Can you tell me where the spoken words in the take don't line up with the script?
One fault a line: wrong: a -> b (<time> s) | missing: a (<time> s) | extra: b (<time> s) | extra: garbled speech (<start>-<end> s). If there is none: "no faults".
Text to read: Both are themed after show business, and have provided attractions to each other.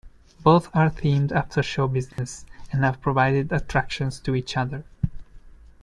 no faults